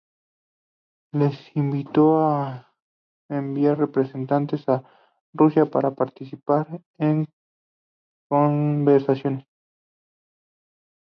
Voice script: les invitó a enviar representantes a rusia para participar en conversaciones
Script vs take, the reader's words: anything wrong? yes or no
no